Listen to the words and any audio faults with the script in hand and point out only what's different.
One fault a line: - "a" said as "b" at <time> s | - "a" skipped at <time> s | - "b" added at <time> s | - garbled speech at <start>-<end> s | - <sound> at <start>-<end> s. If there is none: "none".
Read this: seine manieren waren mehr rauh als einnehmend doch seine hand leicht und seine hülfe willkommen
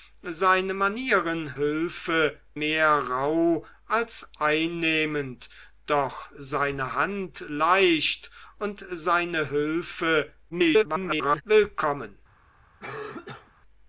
- "waren" said as "hülfe" at 1.6 s
- garbled speech at 10.5-11.4 s
- cough at 12.8-13.5 s